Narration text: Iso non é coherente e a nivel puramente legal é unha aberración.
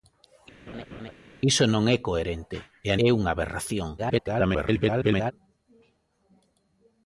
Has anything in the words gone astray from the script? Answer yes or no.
yes